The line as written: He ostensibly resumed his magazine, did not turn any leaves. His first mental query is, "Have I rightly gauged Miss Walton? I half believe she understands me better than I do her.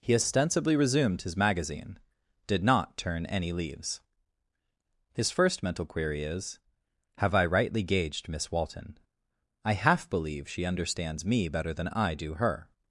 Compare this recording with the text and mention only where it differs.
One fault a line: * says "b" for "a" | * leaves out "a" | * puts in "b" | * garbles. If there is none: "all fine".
all fine